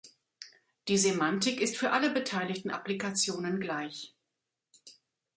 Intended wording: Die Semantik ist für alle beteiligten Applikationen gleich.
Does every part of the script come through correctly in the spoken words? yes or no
yes